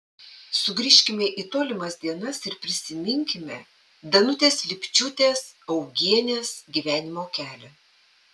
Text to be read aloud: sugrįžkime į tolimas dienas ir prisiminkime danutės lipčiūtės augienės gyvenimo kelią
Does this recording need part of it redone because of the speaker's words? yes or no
no